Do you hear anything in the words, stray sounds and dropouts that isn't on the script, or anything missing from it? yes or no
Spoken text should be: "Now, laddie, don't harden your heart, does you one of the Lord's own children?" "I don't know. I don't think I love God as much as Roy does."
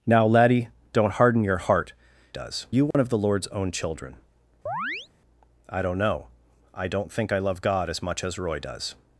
yes